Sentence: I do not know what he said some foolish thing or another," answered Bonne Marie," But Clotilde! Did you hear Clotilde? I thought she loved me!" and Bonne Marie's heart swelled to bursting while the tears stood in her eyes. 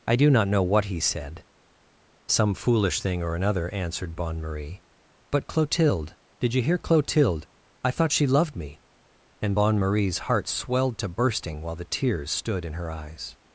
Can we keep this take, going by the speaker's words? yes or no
yes